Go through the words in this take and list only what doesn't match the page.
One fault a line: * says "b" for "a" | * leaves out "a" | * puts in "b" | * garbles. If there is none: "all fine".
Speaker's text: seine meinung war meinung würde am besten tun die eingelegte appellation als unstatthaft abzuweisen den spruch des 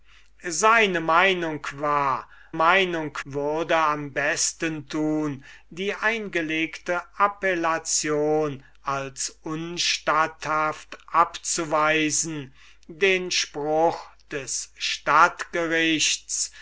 all fine